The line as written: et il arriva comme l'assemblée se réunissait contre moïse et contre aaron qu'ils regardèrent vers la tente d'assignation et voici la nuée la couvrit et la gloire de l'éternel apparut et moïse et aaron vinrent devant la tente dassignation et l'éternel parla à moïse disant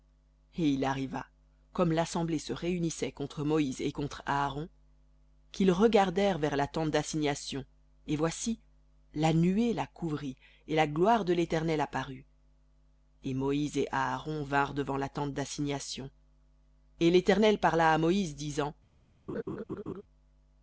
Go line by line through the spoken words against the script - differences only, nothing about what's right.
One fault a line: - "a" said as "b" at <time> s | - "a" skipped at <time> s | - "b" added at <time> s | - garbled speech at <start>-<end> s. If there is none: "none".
none